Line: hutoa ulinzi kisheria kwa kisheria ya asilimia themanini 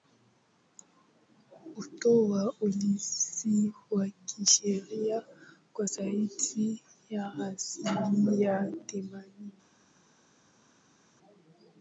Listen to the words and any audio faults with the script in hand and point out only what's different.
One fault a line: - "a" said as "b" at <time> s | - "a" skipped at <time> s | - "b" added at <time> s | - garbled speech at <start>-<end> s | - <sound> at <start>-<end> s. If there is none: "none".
- "wa" added at 3.9 s
- "kisheria" said as "zaidi" at 5.8 s